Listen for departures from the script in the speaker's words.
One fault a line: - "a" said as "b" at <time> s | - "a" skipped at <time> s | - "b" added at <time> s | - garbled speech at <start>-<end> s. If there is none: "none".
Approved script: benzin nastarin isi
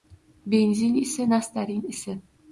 - "isi" added at 0.9 s